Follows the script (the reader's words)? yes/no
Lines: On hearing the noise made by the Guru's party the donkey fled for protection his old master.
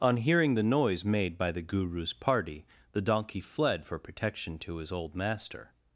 no